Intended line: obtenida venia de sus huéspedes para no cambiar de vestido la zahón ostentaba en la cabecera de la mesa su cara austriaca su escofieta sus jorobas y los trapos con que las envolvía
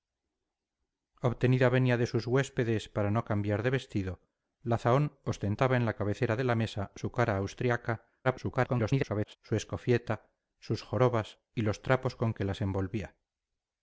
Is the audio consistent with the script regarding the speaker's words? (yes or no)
no